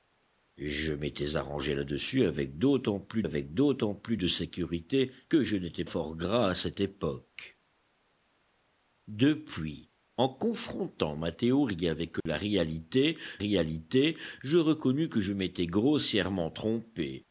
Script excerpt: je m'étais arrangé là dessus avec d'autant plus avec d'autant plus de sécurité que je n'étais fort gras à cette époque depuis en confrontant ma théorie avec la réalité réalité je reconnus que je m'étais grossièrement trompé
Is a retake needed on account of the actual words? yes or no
no